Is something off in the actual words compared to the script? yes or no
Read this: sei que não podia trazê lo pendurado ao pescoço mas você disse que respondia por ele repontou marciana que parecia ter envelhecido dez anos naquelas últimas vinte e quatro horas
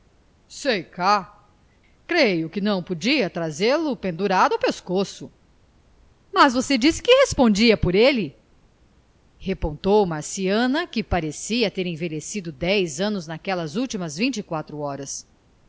yes